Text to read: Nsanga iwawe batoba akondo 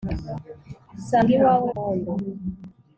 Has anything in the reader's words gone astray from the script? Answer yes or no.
yes